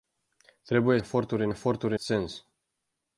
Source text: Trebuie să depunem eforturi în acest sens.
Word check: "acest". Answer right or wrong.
wrong